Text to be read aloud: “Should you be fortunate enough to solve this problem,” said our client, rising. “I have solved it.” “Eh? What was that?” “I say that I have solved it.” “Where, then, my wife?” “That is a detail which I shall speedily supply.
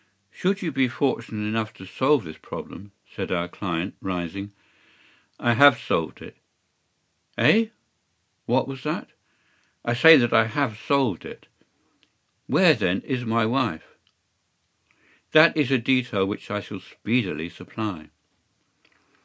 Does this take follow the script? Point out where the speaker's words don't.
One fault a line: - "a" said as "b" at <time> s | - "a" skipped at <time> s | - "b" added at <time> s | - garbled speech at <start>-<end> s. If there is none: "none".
- "is" added at 13.0 s